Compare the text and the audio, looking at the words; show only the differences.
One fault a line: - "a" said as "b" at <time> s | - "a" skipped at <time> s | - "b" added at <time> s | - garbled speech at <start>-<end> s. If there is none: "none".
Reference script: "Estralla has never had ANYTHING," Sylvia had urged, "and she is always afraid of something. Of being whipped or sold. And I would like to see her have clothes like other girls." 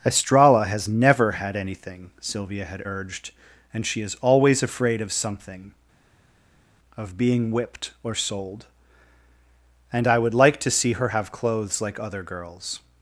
none